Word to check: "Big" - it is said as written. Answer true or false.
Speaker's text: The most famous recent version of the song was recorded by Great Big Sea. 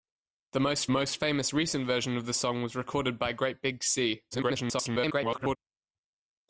true